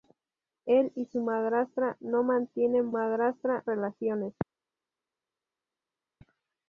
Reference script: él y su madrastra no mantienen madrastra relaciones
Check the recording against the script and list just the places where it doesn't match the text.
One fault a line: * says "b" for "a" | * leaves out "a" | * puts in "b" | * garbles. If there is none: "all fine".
all fine